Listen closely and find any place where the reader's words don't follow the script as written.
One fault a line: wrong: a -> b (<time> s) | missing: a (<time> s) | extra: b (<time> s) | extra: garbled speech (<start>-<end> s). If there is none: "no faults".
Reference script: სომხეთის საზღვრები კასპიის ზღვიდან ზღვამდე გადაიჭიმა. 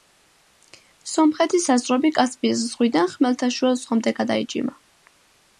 extra: ხმელთაშუა (3.2 s)